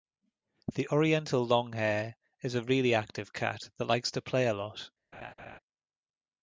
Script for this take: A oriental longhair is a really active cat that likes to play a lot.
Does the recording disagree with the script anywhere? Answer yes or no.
yes